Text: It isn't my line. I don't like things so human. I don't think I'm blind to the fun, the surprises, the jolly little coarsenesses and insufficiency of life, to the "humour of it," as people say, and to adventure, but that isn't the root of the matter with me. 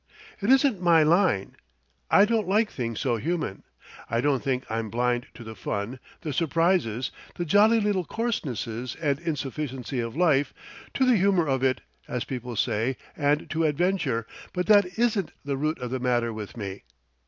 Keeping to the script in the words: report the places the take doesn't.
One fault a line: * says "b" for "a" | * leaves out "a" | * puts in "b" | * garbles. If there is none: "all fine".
all fine